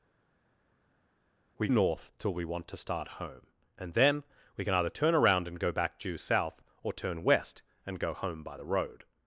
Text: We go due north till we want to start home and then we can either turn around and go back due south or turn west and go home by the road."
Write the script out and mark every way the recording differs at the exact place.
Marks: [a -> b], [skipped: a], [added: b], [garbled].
We [skipped: go due] north till we want to start home and then we can either turn around and go back due south or turn west and go home by the road."